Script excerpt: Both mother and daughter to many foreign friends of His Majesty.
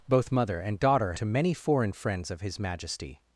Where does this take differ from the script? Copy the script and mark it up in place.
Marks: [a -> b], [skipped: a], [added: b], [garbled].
Both mother and daughter to many foreign friends of His Majesty.